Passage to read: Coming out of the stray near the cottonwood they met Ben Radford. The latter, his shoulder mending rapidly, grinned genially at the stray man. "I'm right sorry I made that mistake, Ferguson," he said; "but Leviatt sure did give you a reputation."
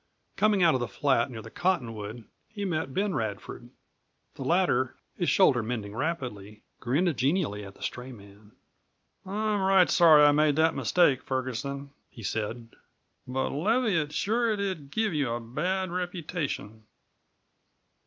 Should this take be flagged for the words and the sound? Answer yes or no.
yes